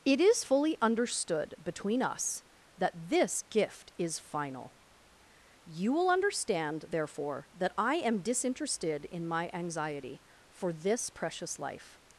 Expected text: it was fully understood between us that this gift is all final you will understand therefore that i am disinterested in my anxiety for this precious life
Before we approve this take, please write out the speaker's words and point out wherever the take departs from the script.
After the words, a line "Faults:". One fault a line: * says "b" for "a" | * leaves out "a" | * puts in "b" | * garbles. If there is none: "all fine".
it is fully understood between us that this gift is final you will understand therefore that i am disinterested in my anxiety for this precious life
Faults:
* says "is" for "was"
* leaves out "all"